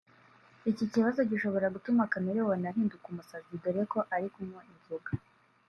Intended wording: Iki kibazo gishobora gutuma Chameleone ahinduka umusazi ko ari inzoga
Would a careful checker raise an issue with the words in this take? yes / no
yes